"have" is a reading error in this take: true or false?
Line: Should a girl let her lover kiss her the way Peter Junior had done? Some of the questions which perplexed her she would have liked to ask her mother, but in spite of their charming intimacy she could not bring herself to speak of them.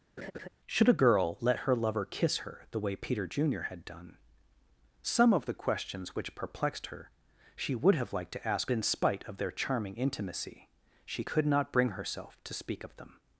false